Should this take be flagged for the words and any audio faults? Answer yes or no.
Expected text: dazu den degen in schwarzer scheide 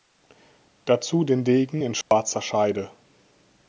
yes